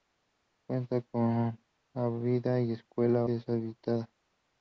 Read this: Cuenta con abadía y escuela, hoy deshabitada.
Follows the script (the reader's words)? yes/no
no